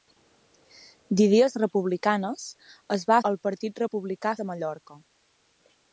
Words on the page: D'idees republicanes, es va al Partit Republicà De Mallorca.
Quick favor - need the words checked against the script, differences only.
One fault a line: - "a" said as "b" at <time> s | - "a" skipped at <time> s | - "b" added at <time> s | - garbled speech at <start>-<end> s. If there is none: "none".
none